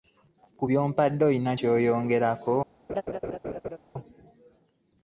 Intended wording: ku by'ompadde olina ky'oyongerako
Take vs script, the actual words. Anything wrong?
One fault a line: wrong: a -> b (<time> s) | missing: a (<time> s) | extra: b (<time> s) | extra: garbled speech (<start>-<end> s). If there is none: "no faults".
no faults